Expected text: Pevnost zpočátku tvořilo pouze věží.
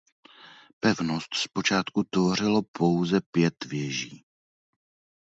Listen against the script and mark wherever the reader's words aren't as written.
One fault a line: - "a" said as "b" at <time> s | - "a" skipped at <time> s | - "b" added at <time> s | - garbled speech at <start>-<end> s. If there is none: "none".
- "pět" added at 3.3 s